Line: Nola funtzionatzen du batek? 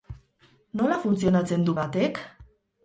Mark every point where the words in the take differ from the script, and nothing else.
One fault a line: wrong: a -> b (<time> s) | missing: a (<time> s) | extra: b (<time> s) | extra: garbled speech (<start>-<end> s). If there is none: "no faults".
no faults